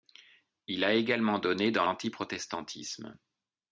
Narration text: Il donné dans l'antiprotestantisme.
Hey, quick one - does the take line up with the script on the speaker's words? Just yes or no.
no